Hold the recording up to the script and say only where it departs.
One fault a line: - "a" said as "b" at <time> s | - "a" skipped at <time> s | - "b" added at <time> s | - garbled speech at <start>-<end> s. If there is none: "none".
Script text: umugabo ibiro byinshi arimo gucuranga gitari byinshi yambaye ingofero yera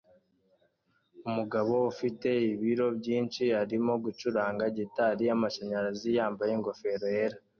- "ufite" added at 1.9 s
- "byinshi" said as "yamashanyarazi" at 5.3 s